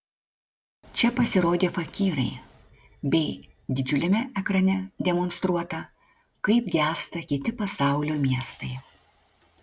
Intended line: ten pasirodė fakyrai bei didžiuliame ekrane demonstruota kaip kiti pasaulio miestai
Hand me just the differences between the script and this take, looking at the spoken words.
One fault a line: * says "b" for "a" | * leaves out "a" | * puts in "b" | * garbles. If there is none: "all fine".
* says "čia" for "ten"
* puts in "gęsta"